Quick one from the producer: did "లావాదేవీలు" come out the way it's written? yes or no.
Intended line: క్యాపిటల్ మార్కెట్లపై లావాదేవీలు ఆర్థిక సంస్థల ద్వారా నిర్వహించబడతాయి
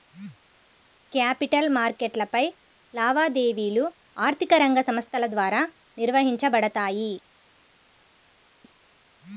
yes